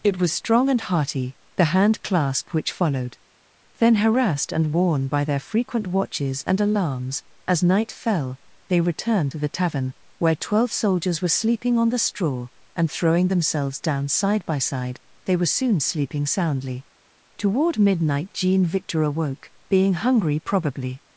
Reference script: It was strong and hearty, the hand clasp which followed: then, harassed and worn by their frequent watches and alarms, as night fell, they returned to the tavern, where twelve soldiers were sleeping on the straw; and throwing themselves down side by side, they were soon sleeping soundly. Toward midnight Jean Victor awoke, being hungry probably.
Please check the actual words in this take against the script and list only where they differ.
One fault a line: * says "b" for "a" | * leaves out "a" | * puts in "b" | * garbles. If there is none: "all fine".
all fine